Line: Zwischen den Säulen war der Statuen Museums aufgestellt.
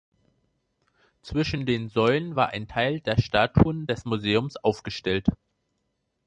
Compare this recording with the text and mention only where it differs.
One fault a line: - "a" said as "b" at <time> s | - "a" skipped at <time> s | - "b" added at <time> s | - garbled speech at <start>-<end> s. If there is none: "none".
- "ein Teil" added at 2.5 s
- "des" added at 3.8 s